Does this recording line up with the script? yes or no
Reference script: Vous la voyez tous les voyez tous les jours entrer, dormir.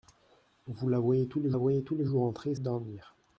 yes